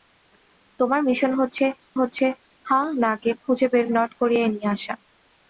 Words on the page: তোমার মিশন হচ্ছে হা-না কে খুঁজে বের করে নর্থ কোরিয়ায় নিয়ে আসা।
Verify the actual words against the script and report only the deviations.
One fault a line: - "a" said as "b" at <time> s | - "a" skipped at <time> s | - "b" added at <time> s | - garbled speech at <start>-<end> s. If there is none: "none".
- "হচ্ছে" added at 2.0 s
- "করে" skipped at 3.9 s